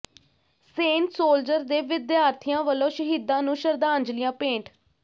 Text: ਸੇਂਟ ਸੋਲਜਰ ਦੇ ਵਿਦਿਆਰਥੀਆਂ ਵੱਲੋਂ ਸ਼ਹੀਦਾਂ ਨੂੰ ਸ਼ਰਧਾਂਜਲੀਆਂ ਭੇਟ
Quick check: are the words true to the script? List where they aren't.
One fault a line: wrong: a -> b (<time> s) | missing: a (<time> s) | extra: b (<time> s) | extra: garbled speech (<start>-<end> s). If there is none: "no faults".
no faults